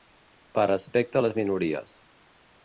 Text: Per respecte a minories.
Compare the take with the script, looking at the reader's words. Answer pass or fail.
fail